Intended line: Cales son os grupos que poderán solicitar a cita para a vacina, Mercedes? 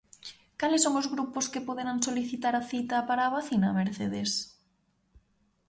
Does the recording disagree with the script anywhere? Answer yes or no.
no